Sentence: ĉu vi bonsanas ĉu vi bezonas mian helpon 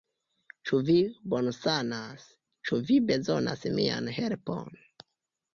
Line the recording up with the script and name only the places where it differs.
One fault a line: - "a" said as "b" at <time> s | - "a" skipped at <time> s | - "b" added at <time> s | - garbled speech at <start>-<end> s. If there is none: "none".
none